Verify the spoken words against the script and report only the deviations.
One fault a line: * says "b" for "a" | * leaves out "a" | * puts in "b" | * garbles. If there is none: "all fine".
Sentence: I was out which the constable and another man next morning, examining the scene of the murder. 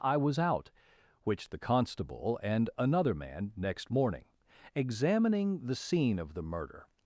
all fine